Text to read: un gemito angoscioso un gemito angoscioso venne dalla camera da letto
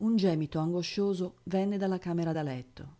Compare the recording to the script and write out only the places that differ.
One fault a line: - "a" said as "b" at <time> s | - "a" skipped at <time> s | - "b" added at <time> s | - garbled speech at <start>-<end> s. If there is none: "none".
- "un gemito angoscioso" skipped at 1.4 s